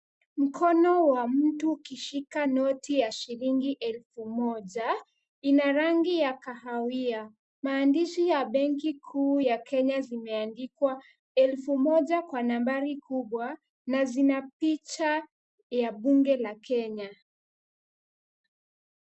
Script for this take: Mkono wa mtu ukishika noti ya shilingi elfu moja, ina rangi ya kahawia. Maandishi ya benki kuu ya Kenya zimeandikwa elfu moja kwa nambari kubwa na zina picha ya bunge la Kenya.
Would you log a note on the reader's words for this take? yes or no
no